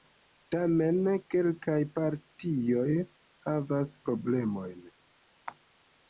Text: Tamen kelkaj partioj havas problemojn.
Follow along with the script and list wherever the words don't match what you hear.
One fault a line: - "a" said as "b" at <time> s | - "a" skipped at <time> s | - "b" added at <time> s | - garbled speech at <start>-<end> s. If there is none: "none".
none